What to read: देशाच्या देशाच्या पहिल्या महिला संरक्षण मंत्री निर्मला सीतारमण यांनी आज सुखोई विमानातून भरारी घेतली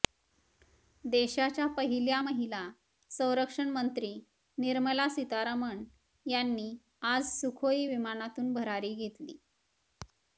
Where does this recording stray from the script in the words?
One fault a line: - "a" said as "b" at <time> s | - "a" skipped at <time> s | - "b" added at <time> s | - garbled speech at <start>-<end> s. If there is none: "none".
- "देशाच्या" skipped at 1.6 s